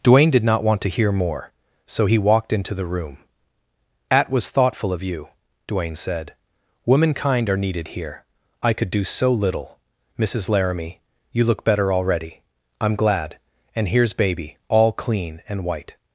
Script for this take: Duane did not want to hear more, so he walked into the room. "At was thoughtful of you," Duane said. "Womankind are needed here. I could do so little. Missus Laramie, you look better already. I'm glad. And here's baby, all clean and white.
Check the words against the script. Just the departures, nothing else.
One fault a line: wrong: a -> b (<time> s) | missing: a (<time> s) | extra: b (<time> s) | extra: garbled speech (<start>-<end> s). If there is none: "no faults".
no faults